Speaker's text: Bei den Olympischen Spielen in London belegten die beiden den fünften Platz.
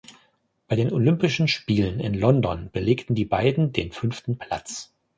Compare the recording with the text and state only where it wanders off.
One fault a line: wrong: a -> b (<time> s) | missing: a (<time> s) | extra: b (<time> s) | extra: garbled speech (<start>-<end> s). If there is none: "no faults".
no faults